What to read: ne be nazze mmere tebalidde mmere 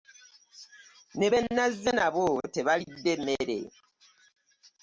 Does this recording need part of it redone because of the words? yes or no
yes